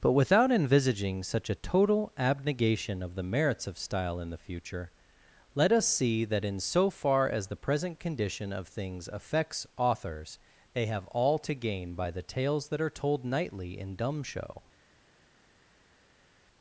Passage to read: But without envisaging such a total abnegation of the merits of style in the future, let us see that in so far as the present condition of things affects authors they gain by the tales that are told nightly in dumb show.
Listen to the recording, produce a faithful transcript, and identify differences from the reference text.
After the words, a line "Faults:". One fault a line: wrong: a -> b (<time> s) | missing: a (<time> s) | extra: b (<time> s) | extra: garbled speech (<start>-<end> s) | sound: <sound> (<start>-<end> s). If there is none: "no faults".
But without envisaging such a total abnegation of the merits of style in the future, let us see that in so far as the present condition of things affects authors they have all to gain by the tales that are told nightly in dumb show.
Faults:
extra: have all to (10.9 s)